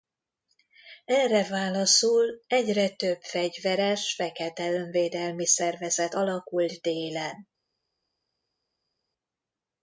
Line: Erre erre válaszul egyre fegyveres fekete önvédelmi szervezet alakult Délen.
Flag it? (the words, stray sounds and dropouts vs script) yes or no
yes